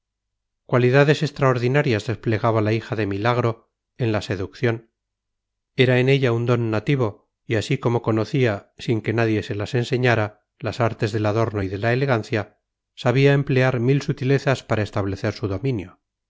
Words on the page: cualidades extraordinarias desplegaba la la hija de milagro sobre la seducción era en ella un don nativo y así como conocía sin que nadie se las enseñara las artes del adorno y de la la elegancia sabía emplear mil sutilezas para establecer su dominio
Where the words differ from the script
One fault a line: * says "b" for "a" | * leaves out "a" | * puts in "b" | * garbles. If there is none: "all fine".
* leaves out "la"
* says "en" for "sobre"
* leaves out "la"